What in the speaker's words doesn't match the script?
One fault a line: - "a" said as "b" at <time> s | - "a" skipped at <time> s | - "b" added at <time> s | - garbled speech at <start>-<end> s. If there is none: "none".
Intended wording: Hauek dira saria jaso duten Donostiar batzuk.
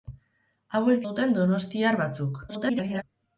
- "dira saria jaso" skipped at 1.0 s
- garbled speech at 2.5-3.0 s